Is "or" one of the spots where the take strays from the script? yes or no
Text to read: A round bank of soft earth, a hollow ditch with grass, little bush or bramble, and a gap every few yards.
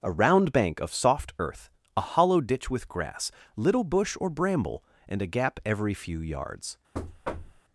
no